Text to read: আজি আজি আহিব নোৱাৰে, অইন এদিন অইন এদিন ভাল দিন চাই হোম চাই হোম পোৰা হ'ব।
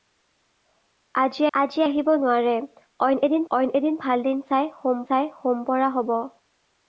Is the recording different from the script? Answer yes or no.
no